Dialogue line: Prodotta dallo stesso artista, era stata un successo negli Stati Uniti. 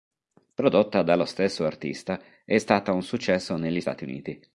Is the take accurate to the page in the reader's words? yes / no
no